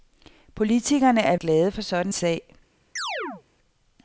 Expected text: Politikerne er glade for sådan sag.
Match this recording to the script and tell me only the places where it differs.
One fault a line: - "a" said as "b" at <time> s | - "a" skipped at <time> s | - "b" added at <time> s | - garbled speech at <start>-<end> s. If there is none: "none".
none